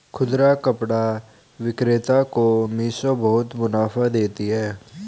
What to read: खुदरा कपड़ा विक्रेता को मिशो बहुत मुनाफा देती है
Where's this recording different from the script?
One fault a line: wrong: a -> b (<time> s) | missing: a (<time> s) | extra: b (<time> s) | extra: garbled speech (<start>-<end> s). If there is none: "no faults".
no faults